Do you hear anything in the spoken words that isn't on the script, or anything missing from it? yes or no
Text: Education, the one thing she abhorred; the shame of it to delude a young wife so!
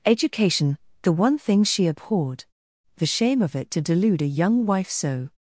no